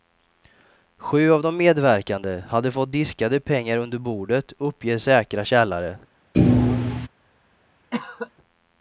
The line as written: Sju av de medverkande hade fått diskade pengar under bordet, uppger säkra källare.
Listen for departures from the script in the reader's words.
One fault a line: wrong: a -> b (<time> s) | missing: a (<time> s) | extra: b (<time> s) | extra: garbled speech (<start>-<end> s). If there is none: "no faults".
no faults